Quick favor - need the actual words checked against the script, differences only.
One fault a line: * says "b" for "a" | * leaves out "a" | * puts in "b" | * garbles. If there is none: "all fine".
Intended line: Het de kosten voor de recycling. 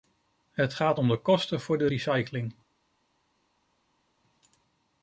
* puts in "gaat om"